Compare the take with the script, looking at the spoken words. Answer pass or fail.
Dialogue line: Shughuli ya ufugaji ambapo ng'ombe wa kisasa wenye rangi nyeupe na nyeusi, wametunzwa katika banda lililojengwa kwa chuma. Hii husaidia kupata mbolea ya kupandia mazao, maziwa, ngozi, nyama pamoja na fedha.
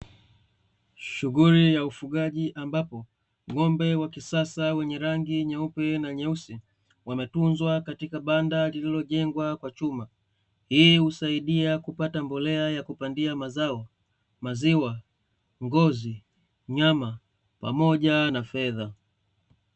pass